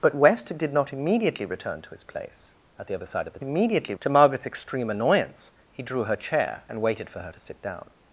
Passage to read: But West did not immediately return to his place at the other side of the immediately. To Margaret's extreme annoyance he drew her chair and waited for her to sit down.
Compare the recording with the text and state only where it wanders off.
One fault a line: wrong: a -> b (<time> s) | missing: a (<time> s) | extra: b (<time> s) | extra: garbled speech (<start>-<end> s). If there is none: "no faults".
no faults